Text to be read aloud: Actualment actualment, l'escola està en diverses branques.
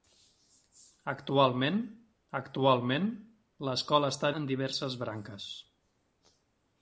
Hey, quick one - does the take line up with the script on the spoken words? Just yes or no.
yes